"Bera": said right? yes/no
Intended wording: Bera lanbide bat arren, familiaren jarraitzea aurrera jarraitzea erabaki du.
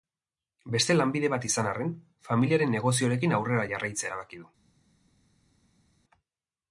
no